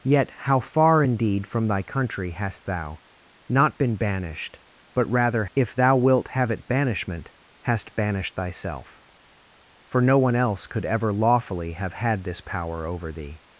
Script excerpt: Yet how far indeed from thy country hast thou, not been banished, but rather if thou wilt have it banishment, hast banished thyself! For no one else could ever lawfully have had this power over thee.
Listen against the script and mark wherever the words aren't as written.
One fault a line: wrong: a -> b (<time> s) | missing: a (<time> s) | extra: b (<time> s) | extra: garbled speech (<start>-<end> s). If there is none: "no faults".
no faults